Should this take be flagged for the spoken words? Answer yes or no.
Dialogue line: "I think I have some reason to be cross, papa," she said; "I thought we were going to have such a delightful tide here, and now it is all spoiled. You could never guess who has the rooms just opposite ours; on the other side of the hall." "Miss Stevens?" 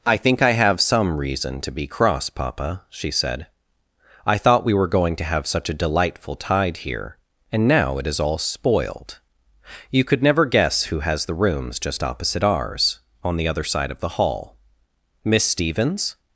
no